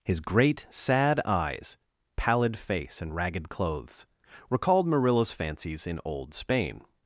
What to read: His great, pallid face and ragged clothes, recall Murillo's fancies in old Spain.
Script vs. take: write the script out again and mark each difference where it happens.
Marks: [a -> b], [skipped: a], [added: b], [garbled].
His great, [added: sad eyes] pallid face and ragged clothes, [recall -> recalled] Murillo's fancies in old Spain.